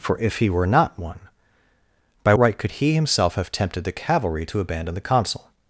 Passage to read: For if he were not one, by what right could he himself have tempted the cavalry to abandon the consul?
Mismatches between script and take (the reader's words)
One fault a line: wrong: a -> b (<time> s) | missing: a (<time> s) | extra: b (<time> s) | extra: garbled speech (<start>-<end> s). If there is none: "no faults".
missing: what (2.3 s)